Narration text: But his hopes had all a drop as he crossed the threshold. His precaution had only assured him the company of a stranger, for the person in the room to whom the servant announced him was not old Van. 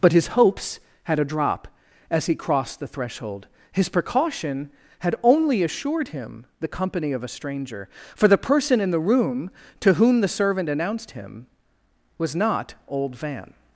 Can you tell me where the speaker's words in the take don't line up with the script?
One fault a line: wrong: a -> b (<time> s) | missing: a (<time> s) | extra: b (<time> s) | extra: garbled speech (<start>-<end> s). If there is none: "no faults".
missing: all (1.2 s)